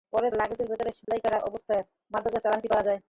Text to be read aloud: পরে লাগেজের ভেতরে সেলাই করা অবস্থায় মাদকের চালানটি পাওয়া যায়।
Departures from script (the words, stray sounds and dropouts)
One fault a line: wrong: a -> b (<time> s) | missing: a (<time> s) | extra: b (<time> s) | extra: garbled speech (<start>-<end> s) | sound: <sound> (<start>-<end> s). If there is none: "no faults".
sound: dropout (1.0-1.1 s)